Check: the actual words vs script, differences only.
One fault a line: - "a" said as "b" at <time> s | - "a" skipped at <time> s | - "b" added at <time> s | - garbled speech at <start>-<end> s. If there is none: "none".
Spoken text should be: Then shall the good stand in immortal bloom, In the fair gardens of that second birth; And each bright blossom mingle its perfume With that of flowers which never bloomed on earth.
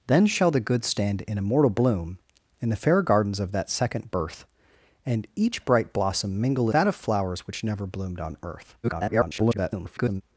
- "its perfume With" skipped at 6.7 s
- garbled speech at 8.8-10.2 s